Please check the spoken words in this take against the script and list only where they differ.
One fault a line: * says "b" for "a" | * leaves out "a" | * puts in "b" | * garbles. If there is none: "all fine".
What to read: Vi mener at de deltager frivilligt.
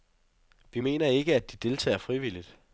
* puts in "ikke"